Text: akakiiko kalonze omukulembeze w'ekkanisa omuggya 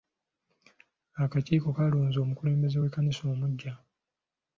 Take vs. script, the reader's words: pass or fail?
pass